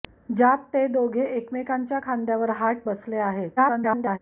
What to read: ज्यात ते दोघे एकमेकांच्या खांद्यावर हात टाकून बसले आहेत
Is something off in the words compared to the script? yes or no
yes